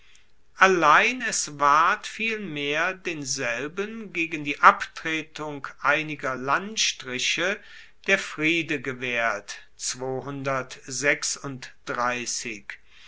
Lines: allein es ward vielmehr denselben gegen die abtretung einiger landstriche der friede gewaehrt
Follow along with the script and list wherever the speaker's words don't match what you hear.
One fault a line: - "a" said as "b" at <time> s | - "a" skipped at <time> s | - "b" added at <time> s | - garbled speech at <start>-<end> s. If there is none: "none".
none